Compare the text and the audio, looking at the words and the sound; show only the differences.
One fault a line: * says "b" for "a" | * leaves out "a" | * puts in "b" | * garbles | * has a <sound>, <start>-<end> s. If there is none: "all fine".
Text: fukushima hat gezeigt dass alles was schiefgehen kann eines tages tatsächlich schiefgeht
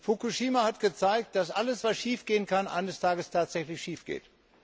all fine